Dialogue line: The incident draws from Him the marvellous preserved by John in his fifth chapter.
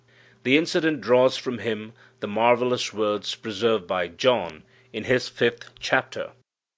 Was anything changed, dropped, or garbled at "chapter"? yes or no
no